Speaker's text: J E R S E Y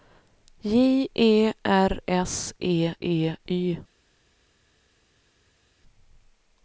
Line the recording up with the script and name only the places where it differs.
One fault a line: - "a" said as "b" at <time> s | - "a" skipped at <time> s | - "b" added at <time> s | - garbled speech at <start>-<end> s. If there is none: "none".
- "E" added at 3.0 s